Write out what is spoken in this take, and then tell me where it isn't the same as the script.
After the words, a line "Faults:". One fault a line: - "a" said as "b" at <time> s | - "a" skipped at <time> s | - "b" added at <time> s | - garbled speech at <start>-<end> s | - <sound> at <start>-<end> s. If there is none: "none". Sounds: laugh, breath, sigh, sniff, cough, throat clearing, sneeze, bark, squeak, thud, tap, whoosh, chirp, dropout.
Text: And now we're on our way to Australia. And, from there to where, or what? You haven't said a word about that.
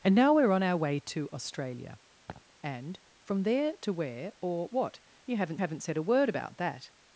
And now we're on our way to Australia. And, from there to where, or what? You haven't haven't said a word about that.
Faults:
- laugh at 2.3-2.4 s
- "haven't" added at 5.6 s